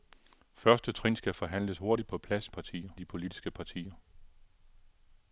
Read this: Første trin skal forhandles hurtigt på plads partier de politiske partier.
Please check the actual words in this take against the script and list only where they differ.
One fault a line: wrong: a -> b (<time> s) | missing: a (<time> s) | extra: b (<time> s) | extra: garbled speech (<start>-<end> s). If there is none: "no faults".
no faults